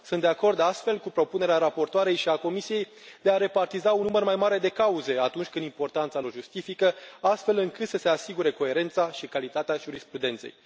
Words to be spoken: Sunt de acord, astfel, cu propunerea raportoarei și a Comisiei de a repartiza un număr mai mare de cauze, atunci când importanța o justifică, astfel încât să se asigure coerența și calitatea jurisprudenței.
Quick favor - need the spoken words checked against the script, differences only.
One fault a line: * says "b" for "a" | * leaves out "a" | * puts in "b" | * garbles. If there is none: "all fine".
all fine